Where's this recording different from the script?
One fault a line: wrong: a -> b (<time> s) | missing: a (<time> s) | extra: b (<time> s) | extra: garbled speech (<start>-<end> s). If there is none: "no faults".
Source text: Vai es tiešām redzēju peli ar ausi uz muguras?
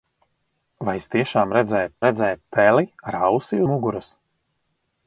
extra: redzēju (2.1 s)
missing: uz (3.6 s)